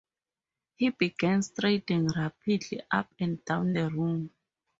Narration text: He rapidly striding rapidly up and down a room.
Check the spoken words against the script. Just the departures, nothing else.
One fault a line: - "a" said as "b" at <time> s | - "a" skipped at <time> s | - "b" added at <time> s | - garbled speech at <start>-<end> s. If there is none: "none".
- "rapidly" said as "began" at 0.9 s
- "a" said as "the" at 3.7 s